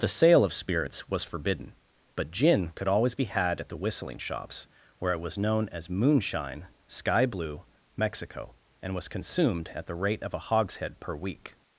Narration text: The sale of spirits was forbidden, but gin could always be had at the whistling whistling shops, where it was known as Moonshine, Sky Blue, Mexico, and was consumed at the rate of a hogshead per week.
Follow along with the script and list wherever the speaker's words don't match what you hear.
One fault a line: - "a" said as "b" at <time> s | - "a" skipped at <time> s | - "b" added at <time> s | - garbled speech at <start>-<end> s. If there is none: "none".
- "whistling" skipped at 4.2 s